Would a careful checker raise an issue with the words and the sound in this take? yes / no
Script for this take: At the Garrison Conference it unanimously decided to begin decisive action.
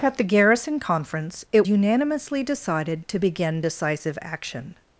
no